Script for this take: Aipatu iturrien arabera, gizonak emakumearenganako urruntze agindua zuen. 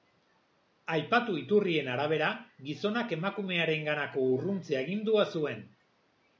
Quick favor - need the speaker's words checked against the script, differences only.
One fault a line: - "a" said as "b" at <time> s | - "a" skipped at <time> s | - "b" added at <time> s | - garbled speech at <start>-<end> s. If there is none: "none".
none